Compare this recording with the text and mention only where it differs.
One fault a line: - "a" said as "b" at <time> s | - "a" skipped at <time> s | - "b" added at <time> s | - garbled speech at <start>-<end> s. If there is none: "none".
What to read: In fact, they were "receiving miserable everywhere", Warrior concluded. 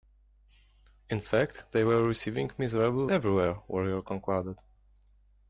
none